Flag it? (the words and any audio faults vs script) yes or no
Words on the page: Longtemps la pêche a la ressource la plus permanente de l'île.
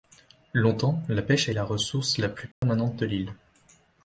yes